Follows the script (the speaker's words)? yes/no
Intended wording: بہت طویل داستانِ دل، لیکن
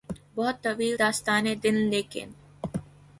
yes